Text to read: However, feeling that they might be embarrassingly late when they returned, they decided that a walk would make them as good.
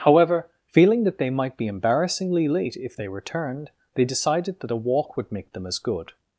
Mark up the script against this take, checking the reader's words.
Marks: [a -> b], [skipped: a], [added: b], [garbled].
However, feeling that they might be embarrassingly late [when -> if] they returned, they decided that a walk would make them as good.